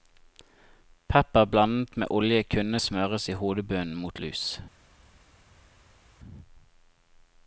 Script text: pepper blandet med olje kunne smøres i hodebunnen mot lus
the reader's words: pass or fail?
pass